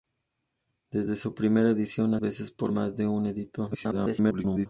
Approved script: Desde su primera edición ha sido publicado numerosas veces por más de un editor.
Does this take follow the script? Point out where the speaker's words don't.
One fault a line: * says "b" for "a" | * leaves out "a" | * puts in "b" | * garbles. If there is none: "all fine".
* leaves out "sido publicado numerosas"
* garbles